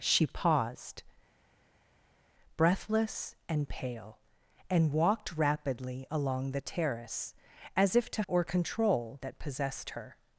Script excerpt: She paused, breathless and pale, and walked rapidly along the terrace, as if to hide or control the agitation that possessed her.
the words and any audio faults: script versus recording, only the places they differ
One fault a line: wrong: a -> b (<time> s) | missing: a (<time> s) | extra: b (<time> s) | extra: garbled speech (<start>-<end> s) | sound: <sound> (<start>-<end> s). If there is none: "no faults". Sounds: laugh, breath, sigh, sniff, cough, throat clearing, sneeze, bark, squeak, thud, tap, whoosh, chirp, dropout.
missing: hide (8.2 s)
missing: the agitation (9.2 s)